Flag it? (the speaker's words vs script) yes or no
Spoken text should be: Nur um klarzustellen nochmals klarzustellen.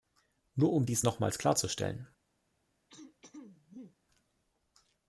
yes